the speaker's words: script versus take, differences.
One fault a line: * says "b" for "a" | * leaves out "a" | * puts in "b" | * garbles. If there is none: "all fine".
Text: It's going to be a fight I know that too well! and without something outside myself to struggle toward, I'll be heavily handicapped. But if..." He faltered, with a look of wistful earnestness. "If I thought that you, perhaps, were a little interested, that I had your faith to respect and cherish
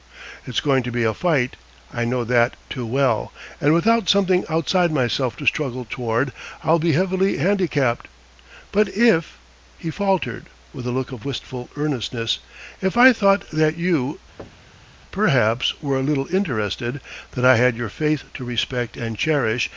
all fine